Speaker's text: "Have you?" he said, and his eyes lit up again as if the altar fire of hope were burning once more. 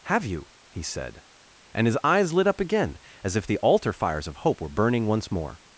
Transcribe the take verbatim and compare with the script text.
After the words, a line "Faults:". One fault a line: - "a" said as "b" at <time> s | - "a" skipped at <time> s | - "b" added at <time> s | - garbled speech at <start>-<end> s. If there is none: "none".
"Have you?" he said, and his eyes lit up again as if the altar fires of hope were burning once more.
Faults:
- "fire" said as "fires" at 3.9 s